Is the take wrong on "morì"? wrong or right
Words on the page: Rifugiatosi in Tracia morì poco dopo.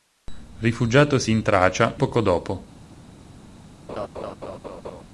wrong